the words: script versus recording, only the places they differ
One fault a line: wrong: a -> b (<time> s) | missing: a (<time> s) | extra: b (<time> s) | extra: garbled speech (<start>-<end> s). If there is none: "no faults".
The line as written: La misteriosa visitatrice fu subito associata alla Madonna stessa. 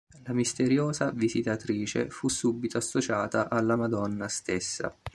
no faults